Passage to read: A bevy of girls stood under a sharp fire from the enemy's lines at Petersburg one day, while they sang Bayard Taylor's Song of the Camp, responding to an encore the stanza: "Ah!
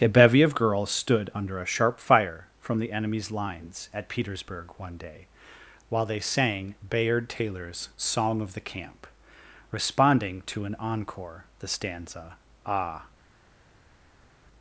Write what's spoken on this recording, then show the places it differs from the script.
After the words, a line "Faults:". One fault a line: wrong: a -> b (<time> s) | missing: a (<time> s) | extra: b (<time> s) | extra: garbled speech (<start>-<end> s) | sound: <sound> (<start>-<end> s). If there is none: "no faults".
A bevy of girls stood under a sharp fire from the enemy's lines at Petersburg one day, while they sang Bayard Taylor's Song of the Camp, responding to an encore the stanza: "Ah!
Faults:
no faults